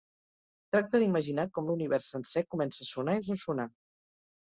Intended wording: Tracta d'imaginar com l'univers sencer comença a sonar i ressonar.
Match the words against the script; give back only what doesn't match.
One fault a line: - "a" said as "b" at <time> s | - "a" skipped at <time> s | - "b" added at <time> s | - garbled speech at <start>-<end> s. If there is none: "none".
none